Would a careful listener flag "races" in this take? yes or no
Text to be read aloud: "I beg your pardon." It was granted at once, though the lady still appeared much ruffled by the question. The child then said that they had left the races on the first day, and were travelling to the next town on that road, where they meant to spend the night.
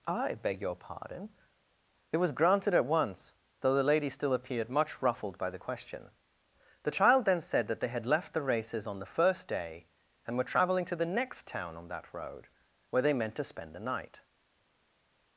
no